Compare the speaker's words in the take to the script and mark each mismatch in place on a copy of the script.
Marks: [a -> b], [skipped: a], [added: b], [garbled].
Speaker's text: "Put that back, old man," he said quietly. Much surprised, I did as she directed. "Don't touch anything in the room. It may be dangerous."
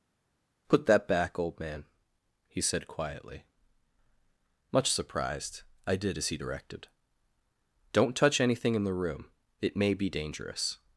"Put that back, old man," he said quietly. Much surprised, I did as [she -> he] directed. "Don't touch anything in the room. It may be dangerous."